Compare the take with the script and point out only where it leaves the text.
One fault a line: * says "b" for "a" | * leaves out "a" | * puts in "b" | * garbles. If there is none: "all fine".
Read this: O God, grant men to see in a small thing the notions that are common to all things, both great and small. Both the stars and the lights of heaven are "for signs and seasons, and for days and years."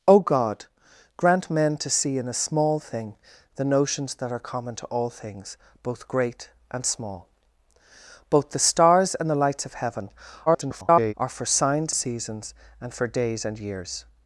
* garbles
* leaves out "and"